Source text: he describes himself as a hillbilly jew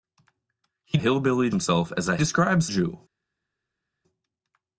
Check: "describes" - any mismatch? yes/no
yes